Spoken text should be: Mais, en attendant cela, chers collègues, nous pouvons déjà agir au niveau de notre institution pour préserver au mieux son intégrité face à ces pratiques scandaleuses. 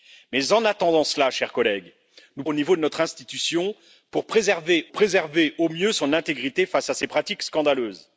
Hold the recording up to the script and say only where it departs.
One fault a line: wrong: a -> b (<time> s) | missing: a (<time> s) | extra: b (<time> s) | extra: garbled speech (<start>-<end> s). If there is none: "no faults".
missing: pouvons déjà agir (2.4 s)
extra: préserver (4.9 s)